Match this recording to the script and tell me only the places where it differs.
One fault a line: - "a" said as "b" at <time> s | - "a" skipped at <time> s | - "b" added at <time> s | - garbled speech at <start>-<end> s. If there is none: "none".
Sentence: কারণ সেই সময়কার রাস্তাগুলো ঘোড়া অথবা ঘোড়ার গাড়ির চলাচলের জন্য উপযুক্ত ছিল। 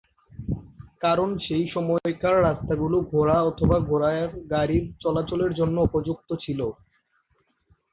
none